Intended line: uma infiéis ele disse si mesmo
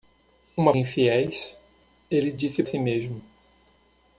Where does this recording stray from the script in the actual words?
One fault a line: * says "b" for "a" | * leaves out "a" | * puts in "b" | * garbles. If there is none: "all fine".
all fine